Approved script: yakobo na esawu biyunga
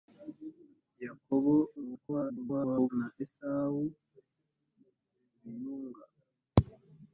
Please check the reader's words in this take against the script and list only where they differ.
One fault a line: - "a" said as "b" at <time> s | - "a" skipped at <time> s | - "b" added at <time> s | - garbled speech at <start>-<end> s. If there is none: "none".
- garbled speech at 1.8-2.9 s